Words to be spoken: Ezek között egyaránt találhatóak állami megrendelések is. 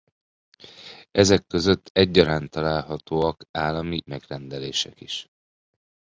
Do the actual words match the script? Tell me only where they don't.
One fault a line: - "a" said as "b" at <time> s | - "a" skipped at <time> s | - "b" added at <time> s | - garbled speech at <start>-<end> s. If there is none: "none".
none